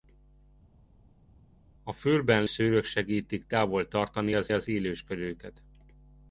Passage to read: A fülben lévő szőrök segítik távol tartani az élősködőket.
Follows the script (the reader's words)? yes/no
no